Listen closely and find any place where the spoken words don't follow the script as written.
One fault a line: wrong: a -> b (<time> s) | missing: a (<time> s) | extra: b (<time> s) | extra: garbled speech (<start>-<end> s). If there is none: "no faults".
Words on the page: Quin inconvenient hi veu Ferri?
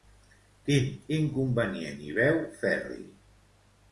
no faults